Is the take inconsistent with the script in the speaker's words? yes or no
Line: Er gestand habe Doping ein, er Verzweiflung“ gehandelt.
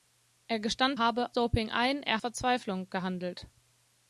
no